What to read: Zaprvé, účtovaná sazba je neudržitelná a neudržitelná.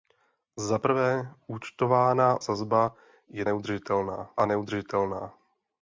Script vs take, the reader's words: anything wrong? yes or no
no